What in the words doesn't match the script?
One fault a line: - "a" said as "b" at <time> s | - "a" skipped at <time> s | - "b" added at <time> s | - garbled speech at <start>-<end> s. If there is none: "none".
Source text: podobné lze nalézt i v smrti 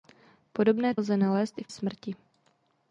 none